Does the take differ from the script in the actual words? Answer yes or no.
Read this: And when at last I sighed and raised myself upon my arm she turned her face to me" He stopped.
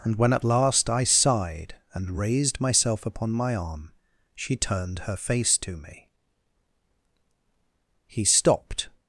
no